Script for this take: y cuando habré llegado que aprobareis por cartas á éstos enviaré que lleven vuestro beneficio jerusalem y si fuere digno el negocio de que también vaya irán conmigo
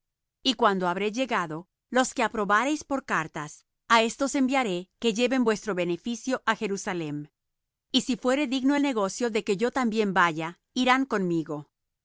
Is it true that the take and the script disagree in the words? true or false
true